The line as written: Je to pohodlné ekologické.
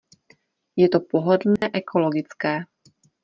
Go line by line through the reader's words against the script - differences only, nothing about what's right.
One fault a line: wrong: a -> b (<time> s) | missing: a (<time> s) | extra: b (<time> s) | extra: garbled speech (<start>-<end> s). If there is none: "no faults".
no faults